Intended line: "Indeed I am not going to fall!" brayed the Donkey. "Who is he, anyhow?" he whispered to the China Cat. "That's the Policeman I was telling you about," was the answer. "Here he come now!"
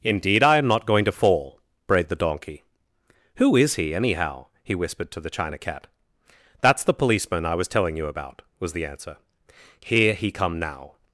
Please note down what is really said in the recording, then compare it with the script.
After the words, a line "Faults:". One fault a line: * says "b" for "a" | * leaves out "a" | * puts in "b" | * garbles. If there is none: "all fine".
"Indeed I am not going to fall!" brayed the Donkey. "Who is he, anyhow?" he whispered to the China Cat. "That's the Policeman I was telling you about," was the answer. "Here he come now!"
Faults:
all fine